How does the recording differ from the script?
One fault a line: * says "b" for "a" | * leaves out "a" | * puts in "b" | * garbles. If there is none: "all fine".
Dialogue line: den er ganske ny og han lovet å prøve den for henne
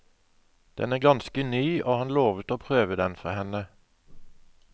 all fine